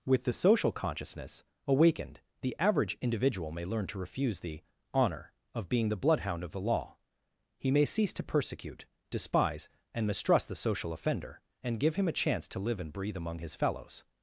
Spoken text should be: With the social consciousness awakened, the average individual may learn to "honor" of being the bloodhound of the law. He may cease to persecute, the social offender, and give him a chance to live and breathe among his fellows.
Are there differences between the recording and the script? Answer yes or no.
yes